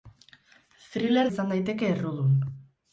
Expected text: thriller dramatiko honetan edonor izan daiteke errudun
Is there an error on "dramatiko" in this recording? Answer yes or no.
yes